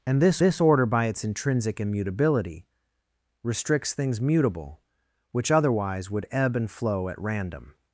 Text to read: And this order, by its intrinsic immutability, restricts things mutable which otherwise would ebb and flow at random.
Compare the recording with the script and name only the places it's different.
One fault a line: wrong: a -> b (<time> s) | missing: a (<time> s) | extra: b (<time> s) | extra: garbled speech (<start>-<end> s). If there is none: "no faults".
extra: this (0.4 s)